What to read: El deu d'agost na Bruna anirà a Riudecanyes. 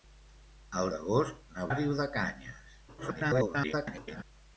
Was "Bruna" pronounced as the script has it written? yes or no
no